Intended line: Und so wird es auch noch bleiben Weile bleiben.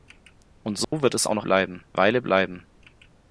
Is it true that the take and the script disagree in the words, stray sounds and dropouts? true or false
true